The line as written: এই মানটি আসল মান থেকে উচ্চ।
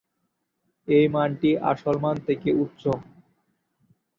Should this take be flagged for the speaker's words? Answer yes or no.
no